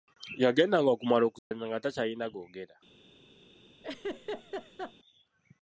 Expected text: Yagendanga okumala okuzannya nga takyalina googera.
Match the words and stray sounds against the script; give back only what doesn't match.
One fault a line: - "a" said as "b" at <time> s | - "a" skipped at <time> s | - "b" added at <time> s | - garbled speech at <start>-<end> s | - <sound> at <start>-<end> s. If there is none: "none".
- dropout at 1.4-1.5 s
- laugh at 3.8-4.9 s